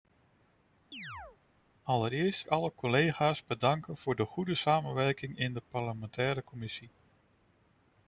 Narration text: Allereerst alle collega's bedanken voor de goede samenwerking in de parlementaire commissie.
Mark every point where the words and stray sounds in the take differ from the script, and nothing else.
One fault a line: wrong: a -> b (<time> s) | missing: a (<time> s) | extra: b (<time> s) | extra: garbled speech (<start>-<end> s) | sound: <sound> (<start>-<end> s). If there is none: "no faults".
sound: chirp (0.9-1.4 s)